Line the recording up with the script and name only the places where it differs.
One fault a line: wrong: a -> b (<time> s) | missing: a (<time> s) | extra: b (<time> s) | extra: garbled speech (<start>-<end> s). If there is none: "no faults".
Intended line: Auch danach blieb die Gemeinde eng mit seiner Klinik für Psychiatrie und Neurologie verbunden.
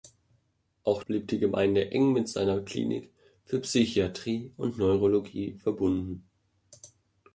missing: danach (1.0 s)